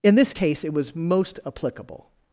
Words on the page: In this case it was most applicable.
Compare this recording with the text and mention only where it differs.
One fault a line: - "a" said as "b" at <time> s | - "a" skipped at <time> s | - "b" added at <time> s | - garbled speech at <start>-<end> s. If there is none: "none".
none